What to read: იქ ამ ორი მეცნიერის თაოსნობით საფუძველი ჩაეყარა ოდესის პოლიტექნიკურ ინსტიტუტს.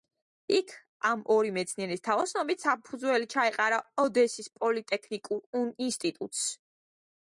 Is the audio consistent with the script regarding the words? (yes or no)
yes